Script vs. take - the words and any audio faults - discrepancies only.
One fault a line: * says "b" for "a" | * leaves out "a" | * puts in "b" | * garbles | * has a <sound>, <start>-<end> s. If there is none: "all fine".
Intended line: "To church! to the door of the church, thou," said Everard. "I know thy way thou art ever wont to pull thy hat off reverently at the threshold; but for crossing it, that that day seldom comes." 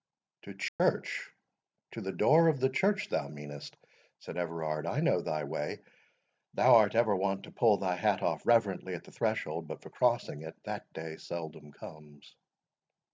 * has a dropout, 0.7-0.8 s
* puts in "meanest"
* leaves out "that"